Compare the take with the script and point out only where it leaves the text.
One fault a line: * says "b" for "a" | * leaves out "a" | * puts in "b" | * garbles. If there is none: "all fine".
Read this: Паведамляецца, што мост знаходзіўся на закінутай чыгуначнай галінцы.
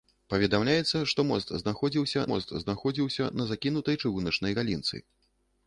* puts in "мост знаходзіўся"